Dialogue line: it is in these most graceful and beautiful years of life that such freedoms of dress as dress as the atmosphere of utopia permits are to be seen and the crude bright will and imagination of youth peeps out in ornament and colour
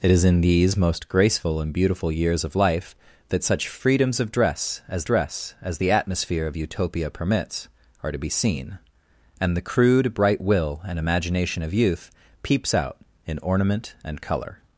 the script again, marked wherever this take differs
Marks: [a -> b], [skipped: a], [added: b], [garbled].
it is in these most graceful and beautiful years of life that such freedoms of dress as dress as the atmosphere of utopia permits are to be seen and the crude bright will and imagination of youth peeps out in ornament and colour